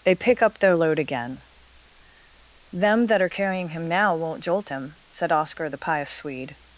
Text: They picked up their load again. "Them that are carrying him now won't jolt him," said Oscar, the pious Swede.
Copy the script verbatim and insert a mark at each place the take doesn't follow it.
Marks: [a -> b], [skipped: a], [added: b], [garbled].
They [picked -> pick] up their load again. "Them that are carrying him now won't jolt him," said Oscar, the pious Swede.